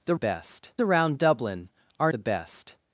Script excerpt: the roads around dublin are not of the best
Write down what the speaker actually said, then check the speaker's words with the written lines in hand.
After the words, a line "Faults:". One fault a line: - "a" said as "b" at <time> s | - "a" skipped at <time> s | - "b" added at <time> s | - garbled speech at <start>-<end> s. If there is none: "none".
the best around dublin are the best
Faults:
- "roads" said as "best" at 0.1 s
- "not of" skipped at 2.1 s